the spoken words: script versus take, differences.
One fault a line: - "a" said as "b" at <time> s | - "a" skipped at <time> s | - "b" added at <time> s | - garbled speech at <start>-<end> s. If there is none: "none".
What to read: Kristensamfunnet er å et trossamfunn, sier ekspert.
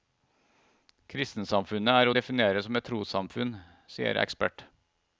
- "definere som" added at 2.1 s